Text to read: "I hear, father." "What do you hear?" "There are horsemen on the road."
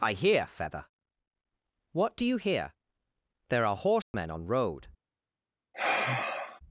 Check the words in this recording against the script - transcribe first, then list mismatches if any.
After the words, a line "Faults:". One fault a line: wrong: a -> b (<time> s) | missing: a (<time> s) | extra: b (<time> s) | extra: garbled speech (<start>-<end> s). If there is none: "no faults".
"I hear, feather." "What do you hear?" "There are horsemen on road."
Faults:
wrong: father -> feather (0.5 s)
missing: the (4.5 s)